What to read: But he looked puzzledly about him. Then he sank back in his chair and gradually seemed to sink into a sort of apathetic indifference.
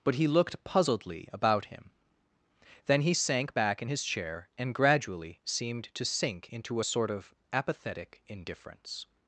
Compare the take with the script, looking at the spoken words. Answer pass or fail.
pass